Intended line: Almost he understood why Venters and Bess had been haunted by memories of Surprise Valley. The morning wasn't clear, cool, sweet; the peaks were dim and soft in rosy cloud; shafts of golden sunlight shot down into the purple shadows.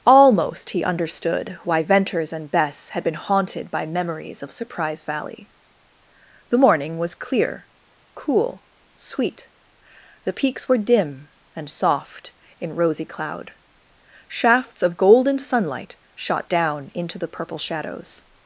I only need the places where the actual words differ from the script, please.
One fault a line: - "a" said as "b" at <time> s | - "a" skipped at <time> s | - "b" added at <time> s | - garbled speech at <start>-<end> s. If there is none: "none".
- "wasn't" said as "was" at 7.0 s